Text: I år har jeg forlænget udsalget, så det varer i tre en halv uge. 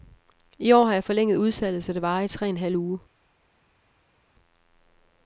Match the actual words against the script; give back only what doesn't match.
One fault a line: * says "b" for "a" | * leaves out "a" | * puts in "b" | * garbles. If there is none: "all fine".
all fine